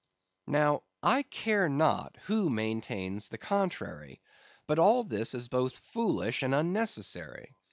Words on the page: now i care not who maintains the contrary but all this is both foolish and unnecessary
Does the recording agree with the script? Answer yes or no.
yes